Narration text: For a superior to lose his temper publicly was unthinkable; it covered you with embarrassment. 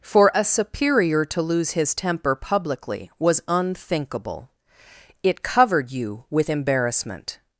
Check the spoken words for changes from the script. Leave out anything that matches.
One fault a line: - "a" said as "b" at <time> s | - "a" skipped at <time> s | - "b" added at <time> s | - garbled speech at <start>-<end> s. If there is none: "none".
none